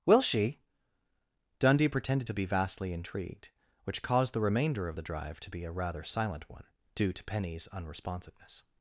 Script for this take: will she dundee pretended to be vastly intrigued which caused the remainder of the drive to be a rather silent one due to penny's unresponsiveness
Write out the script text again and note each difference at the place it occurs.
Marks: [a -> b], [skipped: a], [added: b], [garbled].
will she dundee pretended to be vastly intrigued which caused the remainder of the drive to be a rather silent one due to penny's unresponsiveness